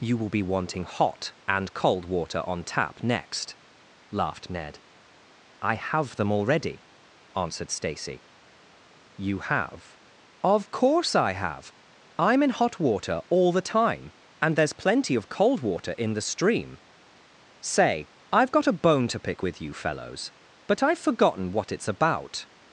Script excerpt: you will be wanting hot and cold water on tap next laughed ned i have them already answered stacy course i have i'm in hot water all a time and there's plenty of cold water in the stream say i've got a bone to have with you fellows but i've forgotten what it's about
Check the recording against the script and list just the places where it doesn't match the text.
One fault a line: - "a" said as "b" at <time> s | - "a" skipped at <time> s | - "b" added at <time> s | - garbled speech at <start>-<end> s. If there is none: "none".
- "you have of" added at 9.2 s
- "a" said as "the" at 13.5 s
- "have" said as "pick" at 19.2 s